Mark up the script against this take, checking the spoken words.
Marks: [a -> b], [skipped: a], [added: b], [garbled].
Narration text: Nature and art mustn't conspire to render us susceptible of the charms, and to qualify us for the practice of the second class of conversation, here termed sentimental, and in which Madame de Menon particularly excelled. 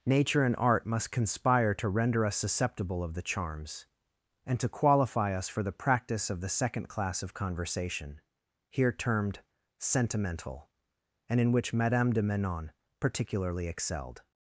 Nature and art [mustn't -> must] conspire to render us susceptible of the charms, and to qualify us for the practice of the second class of conversation, here termed sentimental, and in which Madame de Menon particularly excelled.